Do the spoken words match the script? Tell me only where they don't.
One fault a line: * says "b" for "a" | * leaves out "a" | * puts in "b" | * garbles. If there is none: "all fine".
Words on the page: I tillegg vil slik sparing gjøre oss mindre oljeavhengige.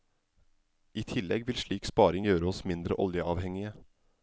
all fine